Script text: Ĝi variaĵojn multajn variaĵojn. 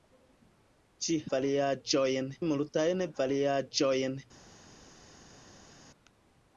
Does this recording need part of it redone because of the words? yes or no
no